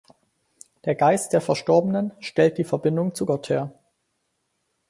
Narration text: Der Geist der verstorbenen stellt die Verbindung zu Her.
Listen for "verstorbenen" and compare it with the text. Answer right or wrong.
right